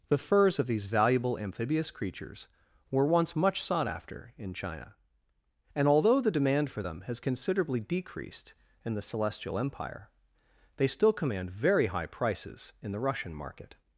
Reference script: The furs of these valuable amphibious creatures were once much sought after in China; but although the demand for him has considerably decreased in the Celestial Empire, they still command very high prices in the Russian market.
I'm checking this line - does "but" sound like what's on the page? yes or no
no